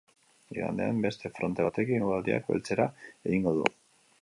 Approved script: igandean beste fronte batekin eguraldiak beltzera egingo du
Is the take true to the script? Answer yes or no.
yes